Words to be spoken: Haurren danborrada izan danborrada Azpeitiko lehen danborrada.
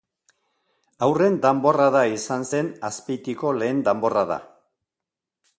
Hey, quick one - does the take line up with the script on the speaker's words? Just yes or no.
no